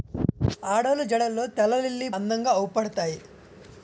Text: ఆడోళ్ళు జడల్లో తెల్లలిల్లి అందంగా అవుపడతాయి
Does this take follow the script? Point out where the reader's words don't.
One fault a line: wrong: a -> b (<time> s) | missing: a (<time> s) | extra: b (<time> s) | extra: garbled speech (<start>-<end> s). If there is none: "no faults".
no faults